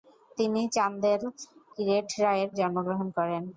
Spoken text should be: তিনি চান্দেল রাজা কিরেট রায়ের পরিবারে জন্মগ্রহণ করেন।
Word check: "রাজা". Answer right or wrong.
wrong